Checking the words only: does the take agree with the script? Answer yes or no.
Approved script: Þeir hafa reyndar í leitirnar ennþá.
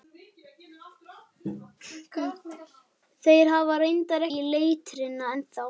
yes